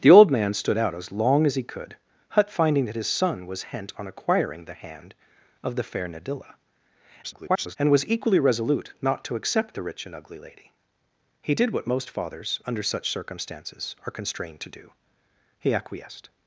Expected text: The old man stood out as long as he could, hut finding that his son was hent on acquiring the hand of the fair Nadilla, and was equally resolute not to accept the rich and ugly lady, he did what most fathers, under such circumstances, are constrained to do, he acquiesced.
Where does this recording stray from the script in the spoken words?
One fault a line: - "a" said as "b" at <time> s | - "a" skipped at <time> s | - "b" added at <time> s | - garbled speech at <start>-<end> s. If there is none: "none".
- garbled speech at 7.2-7.8 s